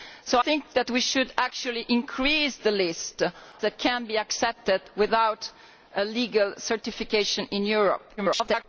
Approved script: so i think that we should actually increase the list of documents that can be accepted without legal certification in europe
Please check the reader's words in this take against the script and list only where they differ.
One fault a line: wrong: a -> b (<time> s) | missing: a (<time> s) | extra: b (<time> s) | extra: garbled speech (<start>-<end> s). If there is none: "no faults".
missing: i (0.4 s)
missing: of documents (3.2 s)
extra: garbled speech (8.2-8.6 s)